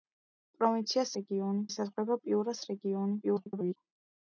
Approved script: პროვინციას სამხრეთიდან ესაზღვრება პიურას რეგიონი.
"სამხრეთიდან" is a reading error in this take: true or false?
true